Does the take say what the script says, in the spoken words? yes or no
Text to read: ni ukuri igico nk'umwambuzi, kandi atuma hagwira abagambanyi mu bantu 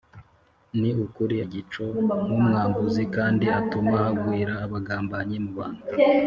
yes